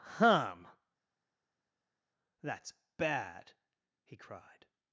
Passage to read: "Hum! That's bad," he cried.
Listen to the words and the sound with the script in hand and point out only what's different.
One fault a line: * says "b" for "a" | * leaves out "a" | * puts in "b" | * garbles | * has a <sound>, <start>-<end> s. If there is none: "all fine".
all fine